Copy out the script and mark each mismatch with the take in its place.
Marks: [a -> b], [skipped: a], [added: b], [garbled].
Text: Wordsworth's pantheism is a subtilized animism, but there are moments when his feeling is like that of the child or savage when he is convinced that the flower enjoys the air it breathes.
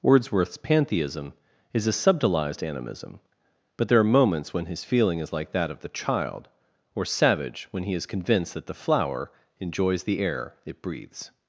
Wordsworth's pantheism is a subtilized animism, but there are moments when his feeling is like that of the child or savage when he is convinced that the flower enjoys the air it breathes.